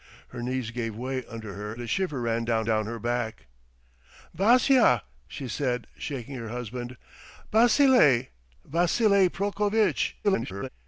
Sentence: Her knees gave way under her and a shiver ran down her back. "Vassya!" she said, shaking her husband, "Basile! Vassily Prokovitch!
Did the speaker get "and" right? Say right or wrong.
wrong